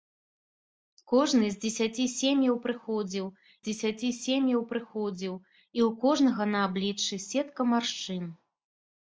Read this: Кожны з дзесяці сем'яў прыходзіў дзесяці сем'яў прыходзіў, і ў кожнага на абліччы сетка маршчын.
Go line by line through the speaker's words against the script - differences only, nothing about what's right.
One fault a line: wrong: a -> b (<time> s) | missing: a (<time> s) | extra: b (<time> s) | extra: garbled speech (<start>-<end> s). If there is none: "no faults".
no faults